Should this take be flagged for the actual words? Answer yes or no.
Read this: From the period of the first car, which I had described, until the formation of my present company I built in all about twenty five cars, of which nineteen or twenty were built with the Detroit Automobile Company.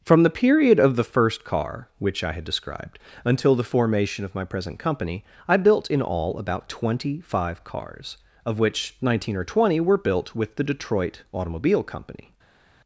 no